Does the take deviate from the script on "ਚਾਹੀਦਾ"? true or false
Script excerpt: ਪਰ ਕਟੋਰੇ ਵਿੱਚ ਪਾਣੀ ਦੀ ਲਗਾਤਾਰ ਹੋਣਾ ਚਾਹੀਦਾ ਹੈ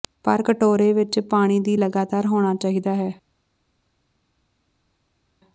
false